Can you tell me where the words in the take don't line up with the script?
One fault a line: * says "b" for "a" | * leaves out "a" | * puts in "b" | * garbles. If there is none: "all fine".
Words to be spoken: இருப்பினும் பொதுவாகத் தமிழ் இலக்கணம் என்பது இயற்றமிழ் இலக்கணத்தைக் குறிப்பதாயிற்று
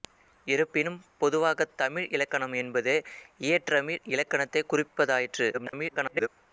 * garbles